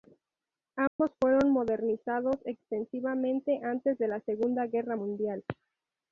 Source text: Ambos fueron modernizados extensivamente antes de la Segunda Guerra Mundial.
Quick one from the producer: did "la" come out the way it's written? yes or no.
yes